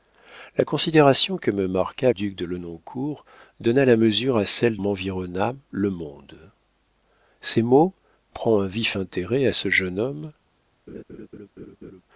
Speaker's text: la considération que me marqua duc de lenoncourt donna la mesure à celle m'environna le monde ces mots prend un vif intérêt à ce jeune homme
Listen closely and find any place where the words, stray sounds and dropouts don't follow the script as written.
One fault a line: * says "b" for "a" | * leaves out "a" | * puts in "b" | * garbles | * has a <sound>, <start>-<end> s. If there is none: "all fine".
* has a laugh, 10.9-12.0 s